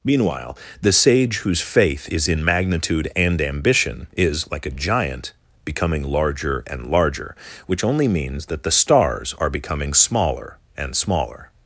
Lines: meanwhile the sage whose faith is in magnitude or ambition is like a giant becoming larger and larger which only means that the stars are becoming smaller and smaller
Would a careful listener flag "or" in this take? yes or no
yes